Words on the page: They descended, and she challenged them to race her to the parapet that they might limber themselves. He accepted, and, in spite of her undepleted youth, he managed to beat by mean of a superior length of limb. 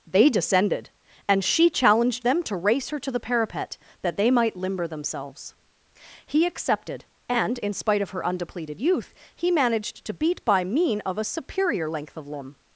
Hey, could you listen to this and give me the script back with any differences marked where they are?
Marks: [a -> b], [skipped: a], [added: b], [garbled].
They descended, and she challenged them to race her to the parapet that they might limber themselves. He accepted, and, in spite of her undepleted youth, he managed to beat by mean of a superior length of limb.